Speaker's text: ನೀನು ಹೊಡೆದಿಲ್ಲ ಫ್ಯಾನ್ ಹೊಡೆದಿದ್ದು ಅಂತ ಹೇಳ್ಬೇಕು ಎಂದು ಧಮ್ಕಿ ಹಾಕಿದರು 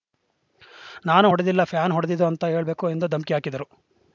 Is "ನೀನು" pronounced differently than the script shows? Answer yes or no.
yes